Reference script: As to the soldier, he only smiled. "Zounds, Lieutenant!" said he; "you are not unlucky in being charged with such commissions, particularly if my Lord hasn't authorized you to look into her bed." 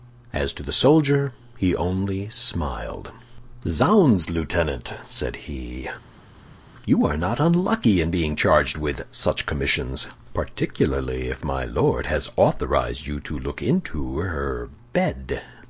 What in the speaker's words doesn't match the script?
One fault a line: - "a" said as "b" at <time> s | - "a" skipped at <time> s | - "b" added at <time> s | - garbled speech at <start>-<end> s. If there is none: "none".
- "hasn't" said as "has" at 12.1 s